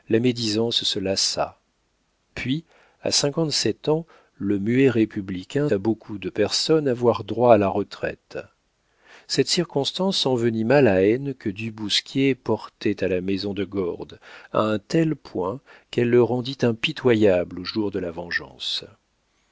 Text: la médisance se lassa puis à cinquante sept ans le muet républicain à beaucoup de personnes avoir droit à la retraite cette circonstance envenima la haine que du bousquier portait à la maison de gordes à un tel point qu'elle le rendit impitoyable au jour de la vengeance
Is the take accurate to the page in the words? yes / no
yes